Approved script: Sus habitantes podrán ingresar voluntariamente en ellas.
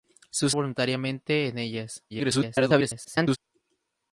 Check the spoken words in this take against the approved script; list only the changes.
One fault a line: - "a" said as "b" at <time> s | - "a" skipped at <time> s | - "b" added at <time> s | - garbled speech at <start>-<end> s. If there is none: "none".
- "habitantes podrán ingresar" skipped at 0.6 s
- garbled speech at 2.1-3.4 s